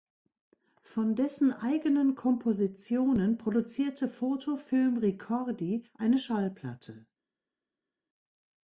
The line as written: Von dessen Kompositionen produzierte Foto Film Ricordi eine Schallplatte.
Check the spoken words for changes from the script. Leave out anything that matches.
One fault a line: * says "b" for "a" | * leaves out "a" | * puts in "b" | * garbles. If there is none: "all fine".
* puts in "eigenen"